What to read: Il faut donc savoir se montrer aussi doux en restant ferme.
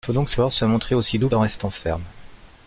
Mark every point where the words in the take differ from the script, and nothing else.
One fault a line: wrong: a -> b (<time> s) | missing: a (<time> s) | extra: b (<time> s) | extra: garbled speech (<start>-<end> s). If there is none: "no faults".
no faults